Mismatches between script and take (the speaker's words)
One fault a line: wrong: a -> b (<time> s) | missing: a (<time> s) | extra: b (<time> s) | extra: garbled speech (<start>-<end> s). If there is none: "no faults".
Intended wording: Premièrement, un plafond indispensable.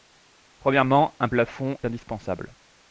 no faults